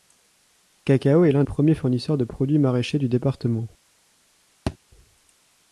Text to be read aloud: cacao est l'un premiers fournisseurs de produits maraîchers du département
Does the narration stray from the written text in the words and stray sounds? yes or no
yes